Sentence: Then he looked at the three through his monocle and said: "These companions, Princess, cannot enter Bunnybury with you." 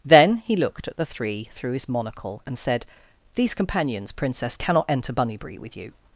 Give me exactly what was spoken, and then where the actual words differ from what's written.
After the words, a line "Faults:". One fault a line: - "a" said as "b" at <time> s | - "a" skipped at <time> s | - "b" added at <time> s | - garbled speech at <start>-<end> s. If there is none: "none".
Then he looked at the three through his monocle and said: "These companions, Princess, cannot enter Bunnybury with you."
Faults:
none